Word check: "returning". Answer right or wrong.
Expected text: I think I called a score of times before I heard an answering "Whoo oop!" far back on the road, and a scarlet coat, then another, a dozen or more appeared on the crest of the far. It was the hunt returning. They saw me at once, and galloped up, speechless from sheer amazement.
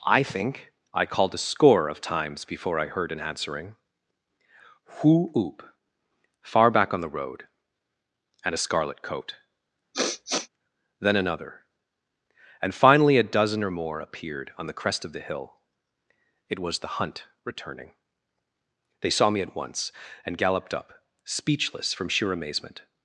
right